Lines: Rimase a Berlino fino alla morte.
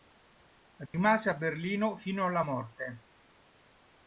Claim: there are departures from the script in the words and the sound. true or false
true